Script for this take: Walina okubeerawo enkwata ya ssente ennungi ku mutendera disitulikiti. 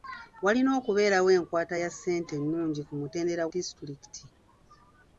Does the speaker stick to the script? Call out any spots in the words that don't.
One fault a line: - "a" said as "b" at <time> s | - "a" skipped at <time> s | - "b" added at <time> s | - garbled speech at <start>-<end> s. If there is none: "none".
none